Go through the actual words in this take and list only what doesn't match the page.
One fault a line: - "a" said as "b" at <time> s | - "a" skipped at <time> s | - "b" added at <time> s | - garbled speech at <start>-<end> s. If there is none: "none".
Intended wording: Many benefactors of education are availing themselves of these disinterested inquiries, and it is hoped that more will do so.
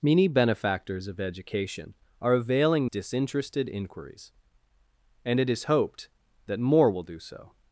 - "themselves of these" skipped at 2.9 s